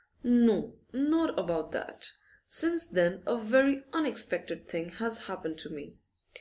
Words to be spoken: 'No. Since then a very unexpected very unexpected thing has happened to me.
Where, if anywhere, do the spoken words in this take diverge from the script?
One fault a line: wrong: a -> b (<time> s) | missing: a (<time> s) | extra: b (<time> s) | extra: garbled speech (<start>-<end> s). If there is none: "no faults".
extra: not about that (0.9 s)
missing: very unexpected (4.7 s)